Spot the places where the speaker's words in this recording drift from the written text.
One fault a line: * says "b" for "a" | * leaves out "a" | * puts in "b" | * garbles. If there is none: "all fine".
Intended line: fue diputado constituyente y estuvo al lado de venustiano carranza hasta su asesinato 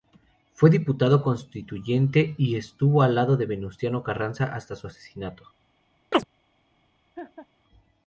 all fine